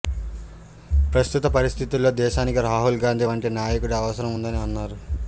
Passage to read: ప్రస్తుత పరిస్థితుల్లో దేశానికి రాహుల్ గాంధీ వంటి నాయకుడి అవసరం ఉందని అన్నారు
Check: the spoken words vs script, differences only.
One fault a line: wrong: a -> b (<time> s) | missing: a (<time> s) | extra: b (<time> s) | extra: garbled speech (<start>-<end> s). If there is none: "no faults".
no faults